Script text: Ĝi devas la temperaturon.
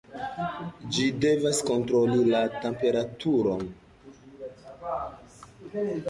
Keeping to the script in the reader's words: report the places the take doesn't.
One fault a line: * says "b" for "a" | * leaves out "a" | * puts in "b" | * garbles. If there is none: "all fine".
* puts in "kontroli"